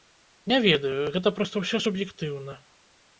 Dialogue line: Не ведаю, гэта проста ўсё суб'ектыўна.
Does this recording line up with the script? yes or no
yes